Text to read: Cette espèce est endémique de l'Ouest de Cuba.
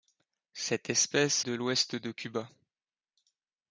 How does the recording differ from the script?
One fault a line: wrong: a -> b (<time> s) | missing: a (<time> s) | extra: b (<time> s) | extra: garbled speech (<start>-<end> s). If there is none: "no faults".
missing: est endémique (1.4 s)